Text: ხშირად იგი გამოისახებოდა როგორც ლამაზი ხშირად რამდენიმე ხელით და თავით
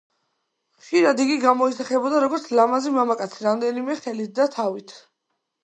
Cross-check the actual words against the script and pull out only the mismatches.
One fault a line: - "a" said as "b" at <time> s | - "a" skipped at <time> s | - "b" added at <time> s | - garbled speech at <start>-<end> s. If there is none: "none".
- "ხშირად" said as "მამაკაცი" at 3.0 s